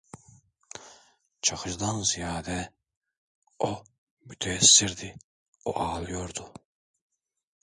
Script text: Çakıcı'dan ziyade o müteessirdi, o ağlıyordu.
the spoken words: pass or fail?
pass